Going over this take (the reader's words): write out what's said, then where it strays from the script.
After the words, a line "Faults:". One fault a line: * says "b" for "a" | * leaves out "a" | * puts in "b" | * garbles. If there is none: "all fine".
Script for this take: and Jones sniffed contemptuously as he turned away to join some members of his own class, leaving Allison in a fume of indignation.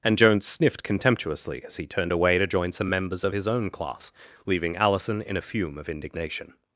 and Jones sniffed contemptuously as he turned away to join some members of his own class, leaving Allison in a fume of indignation.
Faults:
all fine